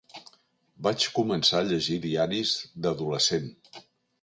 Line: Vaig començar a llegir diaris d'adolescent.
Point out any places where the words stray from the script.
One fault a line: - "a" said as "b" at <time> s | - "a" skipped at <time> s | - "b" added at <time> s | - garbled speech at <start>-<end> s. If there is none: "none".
none